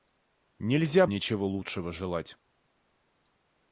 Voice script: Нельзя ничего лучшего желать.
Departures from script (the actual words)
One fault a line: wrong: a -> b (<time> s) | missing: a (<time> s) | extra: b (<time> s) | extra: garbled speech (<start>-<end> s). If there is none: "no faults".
no faults